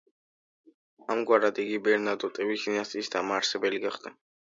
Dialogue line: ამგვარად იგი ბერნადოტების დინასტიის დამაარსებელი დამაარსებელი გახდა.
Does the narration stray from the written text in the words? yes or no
yes